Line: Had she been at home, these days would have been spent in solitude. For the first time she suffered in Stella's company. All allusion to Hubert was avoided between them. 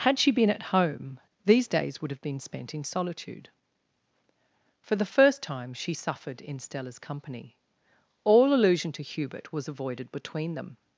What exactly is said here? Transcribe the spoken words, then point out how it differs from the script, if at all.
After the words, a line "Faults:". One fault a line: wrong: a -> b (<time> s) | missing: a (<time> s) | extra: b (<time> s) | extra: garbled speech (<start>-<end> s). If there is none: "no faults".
Had she been at home, these days would have been spent in solitude. For the first time she suffered in Stella's company. All allusion to Hubert was avoided between them.
Faults:
no faults